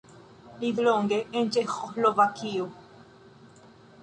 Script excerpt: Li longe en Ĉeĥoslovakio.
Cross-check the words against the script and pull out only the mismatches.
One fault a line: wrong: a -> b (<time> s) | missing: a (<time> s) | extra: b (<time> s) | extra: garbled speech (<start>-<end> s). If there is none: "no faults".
no faults